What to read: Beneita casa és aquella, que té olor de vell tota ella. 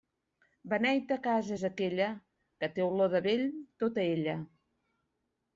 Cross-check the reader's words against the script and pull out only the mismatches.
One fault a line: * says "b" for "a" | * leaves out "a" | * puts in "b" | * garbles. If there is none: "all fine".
all fine